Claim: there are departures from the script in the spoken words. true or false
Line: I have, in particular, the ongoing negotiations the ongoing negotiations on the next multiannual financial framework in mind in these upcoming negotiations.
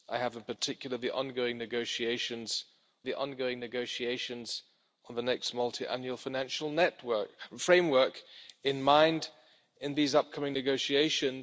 false